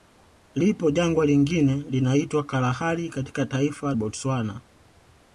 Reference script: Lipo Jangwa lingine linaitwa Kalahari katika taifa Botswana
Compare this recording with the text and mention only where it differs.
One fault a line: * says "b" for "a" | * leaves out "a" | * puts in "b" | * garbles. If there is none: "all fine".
all fine